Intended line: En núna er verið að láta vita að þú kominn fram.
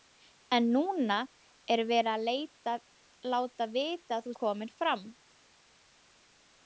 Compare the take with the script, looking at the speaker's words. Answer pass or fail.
pass